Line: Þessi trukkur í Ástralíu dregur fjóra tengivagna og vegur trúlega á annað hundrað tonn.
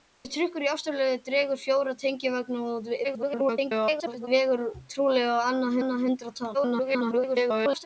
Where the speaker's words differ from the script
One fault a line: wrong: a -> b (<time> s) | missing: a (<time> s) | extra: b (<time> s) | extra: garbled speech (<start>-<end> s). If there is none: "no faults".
extra: garbled speech (3.0-4.3 s)
extra: annað (5.8 s)
extra: garbled speech (6.5-7.9 s)